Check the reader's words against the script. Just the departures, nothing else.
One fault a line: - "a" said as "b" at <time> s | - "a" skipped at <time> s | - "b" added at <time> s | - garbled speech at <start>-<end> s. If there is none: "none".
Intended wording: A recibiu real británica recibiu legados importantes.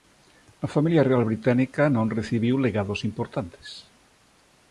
- "recibiu" said as "familia" at 0.8 s
- "non" added at 1.9 s